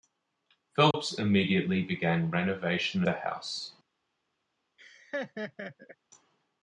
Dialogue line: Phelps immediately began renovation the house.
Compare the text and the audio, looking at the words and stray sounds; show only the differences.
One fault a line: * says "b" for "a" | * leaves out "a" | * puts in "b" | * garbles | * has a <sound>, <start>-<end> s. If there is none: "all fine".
* has a dropout, 0.9-0.9 s
* has a laugh, 4.8-6.0 s